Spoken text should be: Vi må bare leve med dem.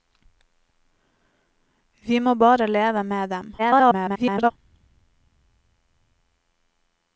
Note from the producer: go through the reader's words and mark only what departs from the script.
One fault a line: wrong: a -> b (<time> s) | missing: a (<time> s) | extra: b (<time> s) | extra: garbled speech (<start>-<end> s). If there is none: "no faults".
extra: garbled speech (3.6-4.5 s)